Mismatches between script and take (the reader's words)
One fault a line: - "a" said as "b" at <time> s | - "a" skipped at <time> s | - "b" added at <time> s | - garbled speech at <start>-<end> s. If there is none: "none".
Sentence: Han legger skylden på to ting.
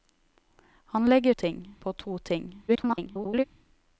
- "skylden" said as "ting" at 1.3 s
- garbled speech at 2.7-3.4 s